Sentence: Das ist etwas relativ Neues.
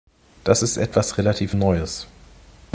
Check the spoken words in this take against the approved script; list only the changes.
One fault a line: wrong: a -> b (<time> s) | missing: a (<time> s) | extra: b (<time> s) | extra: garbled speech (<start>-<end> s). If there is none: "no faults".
no faults